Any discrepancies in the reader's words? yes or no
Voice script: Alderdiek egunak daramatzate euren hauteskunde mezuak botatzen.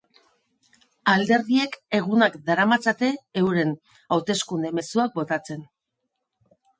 no